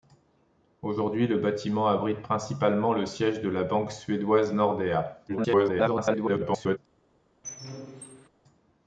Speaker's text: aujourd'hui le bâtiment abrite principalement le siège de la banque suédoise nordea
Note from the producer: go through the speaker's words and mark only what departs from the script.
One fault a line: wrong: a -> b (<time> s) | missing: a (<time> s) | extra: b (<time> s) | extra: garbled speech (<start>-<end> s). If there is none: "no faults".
extra: garbled speech (5.3-6.8 s)